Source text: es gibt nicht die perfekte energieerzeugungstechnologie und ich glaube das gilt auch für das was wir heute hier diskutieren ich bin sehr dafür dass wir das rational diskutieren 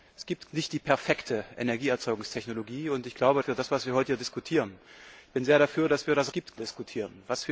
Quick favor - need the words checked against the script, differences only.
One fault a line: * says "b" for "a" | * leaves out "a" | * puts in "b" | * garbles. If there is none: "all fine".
* leaves out "das gilt auch"
* says "gibt" for "rational"